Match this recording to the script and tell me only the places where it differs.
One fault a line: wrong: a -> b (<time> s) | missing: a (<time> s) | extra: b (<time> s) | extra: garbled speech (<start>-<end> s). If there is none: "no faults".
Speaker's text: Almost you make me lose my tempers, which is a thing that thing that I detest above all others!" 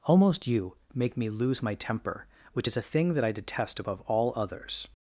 wrong: tempers -> temper (1.8 s)
missing: thing that (3.2 s)